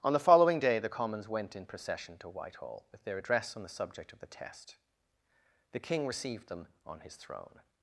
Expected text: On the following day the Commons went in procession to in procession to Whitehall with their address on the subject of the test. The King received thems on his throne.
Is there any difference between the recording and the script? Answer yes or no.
yes